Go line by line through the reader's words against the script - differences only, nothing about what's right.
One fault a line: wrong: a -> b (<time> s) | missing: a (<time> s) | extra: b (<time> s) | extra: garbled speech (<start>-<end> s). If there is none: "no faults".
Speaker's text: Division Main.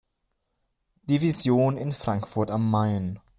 extra: in Frankfurt am (1.8 s)